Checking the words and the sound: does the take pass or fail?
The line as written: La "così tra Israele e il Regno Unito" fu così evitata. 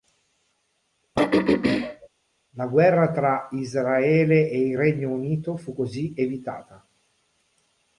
fail